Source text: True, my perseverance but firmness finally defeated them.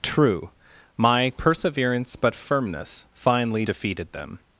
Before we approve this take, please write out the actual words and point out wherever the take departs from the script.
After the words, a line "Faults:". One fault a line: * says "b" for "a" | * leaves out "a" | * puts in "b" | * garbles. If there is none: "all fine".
True, my perseverance but firmness finally defeated them.
Faults:
all fine